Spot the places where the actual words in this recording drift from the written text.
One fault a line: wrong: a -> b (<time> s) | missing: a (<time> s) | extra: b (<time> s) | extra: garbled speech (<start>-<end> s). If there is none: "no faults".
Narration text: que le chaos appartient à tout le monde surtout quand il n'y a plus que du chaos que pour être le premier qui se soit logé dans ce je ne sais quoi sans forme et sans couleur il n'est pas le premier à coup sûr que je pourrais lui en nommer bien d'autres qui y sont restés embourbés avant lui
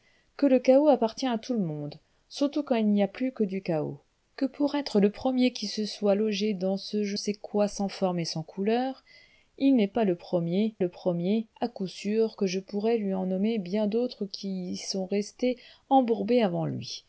missing: ne (7.2 s)
extra: le premier (10.8 s)